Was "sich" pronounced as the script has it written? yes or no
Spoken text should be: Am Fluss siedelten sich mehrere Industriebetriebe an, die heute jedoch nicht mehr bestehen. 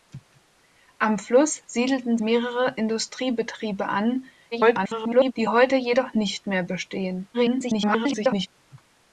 no